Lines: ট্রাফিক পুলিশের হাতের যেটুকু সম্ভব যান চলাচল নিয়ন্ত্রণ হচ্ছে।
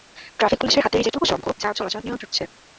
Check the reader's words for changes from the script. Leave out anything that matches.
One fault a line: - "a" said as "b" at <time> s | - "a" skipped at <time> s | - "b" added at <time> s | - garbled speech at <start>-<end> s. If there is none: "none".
none